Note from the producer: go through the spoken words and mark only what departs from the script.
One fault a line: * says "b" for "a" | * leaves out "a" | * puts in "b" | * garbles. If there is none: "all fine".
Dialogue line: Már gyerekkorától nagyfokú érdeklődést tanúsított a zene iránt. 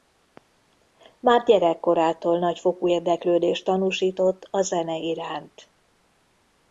all fine